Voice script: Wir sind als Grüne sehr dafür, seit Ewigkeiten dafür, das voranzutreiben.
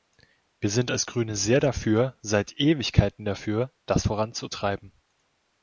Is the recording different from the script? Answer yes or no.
no